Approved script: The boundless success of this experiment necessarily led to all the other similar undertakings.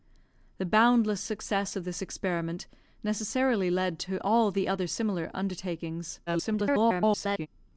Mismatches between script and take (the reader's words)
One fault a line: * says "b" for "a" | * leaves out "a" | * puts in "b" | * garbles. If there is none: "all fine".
* garbles